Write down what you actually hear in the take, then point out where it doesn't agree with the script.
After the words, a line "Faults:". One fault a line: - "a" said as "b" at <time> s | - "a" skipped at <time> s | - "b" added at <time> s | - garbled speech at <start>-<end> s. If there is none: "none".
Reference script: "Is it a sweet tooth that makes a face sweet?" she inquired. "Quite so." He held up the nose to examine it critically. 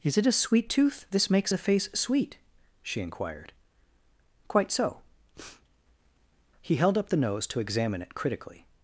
"Is it a sweet tooth this makes a face sweet?" she inquired. "Quite so." He held up the nose to examine it critically.
Faults:
- "that" said as "this" at 1.1 s